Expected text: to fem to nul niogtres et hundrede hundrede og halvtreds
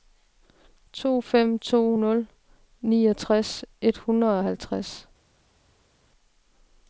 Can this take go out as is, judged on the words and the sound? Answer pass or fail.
fail